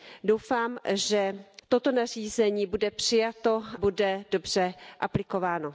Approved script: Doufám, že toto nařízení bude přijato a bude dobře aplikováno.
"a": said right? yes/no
no